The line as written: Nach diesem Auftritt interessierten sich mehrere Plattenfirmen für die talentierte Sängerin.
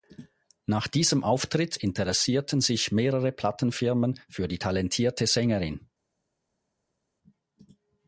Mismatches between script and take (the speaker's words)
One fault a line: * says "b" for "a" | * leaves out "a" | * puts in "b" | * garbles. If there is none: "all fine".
all fine